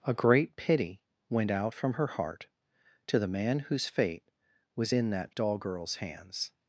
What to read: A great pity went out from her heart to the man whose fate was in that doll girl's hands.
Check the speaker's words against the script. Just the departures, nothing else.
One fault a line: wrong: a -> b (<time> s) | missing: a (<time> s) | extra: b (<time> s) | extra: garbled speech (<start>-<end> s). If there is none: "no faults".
no faults